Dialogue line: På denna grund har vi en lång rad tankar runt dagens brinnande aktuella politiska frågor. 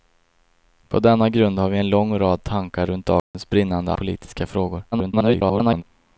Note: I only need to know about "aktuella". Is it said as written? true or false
false